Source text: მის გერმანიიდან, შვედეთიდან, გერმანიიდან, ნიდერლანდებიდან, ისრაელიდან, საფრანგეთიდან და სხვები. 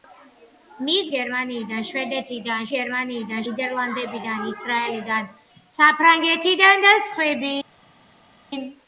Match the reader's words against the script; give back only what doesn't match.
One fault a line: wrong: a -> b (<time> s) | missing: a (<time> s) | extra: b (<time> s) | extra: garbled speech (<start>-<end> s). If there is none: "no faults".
no faults